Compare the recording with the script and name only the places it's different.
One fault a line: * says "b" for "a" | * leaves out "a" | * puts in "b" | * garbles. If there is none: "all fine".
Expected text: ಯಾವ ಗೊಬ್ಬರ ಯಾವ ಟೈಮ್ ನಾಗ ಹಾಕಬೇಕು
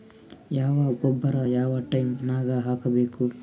all fine